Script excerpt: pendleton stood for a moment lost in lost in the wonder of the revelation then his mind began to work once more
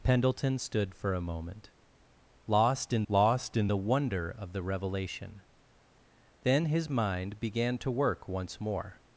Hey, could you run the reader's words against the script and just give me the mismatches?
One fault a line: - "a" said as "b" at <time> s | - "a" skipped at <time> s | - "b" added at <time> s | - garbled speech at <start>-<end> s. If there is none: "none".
none